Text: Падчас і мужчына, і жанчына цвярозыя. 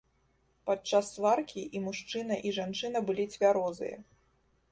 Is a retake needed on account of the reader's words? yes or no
yes